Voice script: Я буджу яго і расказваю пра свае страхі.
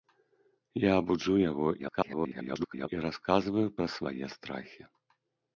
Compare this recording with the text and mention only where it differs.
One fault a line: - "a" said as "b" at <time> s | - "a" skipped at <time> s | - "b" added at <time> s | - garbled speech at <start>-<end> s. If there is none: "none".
- garbled speech at 1.8-2.9 s